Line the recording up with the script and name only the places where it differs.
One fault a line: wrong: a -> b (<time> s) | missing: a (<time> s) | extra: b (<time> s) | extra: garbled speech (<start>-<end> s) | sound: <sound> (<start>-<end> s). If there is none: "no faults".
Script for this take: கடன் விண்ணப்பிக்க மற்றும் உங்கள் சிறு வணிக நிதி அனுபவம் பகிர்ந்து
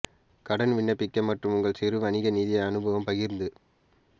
no faults